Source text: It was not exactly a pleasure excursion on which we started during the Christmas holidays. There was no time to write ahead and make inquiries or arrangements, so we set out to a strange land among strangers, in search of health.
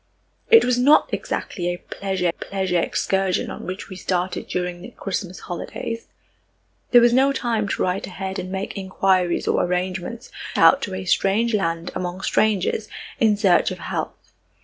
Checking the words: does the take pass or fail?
fail